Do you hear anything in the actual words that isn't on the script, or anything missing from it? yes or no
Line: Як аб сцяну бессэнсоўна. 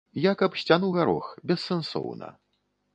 yes